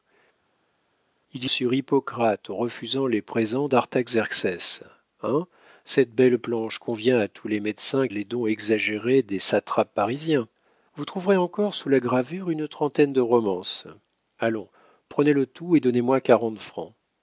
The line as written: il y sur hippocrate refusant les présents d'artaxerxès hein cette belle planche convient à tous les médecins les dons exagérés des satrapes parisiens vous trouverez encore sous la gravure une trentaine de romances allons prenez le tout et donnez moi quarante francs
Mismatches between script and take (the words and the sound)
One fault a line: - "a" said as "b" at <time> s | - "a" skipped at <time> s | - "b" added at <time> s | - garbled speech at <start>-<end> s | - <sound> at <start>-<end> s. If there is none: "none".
none